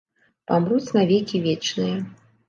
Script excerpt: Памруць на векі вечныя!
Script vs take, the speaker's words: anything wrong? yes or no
no